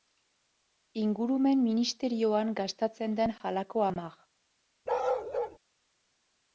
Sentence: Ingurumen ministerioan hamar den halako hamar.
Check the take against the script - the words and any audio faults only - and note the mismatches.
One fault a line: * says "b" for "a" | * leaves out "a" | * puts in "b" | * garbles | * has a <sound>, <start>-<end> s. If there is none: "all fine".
* says "gastatzen" for "hamar"
* has a bark, 4.9-5.6 s